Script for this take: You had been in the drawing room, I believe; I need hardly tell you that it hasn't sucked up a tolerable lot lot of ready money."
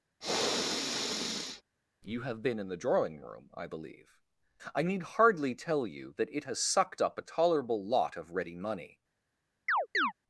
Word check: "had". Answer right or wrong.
wrong